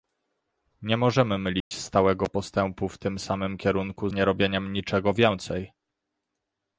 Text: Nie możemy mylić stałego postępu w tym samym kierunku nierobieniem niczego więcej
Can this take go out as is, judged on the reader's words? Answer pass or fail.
pass